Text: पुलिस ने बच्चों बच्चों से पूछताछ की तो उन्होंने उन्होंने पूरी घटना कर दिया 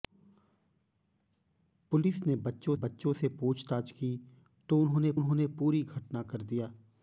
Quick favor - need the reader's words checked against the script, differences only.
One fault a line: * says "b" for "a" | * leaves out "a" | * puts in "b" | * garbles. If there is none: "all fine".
all fine